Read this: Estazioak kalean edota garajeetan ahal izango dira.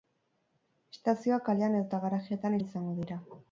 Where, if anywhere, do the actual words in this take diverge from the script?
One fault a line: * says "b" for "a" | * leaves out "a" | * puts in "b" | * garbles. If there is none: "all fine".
all fine